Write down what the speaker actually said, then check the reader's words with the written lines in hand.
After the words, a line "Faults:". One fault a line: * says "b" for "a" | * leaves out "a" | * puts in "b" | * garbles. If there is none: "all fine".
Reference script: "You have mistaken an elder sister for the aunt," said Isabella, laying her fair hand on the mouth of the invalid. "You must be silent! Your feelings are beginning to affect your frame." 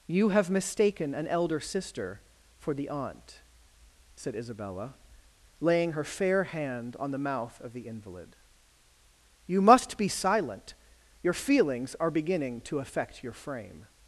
"You have mistaken an elder sister for the aunt," said Isabella, laying her fair hand on the mouth of the invalid. "You must be silent! Your feelings are beginning to affect your frame."
Faults:
all fine